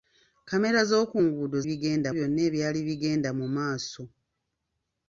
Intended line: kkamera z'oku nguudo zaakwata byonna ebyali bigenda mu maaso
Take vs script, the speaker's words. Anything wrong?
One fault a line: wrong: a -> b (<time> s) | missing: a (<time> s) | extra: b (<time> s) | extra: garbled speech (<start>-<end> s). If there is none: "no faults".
wrong: zaakwata -> bigenda (1.7 s)